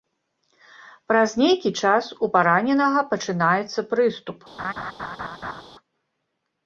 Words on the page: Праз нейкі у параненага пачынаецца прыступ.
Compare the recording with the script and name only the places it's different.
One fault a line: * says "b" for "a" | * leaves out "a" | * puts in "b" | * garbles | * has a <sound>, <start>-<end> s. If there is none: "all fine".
* puts in "час"
* has a laugh, 4.6-5.6 s